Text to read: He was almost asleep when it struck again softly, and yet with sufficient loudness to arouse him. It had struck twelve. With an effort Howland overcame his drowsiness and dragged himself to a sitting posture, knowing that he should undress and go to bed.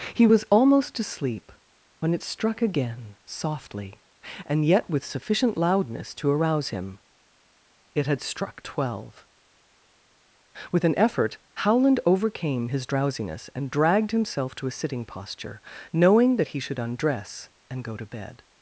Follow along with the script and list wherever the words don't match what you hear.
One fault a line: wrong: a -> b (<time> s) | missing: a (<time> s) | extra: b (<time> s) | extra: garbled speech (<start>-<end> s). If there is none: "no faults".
no faults